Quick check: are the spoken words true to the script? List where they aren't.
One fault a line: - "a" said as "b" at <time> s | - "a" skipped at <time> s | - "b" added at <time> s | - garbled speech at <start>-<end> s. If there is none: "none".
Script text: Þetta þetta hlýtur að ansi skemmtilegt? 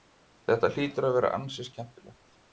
- "þetta" skipped at 0.7 s
- "vera" added at 1.2 s